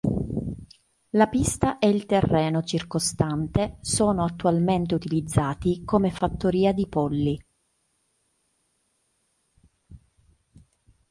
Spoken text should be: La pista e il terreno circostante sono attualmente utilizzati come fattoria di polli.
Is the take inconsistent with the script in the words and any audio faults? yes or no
no